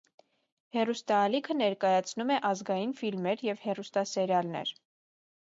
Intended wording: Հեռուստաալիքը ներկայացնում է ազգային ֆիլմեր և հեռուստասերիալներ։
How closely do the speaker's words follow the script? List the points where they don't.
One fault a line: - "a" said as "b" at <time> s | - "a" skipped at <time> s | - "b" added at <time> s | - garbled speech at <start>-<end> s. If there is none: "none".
none